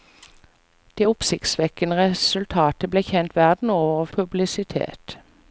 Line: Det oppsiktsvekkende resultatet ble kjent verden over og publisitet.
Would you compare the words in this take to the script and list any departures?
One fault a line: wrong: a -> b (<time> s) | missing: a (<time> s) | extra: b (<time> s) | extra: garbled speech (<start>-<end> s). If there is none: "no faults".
no faults